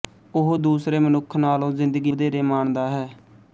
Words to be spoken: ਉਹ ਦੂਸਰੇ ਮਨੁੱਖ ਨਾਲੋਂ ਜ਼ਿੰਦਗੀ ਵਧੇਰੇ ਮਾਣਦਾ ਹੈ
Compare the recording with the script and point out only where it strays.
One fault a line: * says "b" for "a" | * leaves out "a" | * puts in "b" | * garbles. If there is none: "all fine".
all fine